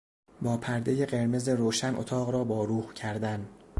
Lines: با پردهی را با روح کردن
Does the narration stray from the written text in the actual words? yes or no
yes